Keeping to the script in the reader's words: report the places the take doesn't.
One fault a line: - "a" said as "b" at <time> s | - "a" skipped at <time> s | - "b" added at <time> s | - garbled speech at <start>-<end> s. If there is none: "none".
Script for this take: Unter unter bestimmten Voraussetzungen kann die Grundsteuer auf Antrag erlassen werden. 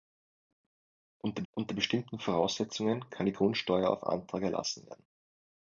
none